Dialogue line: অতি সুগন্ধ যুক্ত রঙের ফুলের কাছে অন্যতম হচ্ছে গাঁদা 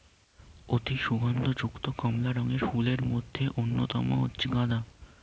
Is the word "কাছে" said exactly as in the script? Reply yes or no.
no